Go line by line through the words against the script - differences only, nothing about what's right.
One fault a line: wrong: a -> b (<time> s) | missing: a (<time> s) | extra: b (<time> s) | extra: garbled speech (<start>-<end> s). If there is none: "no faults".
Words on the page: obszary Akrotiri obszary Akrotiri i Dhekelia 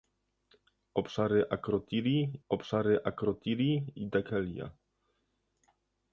no faults